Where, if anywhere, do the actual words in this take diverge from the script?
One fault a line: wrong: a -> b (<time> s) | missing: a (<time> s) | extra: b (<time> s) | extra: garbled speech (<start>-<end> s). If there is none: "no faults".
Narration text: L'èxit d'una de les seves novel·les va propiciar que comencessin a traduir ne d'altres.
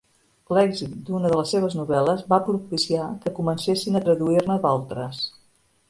no faults